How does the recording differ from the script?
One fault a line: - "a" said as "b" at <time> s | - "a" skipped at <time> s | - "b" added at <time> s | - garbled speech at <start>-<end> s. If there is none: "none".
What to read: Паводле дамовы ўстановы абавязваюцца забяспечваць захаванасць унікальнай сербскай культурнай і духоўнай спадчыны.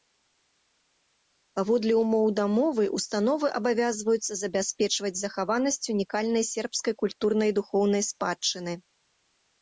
- "ўмоў" added at 2.0 s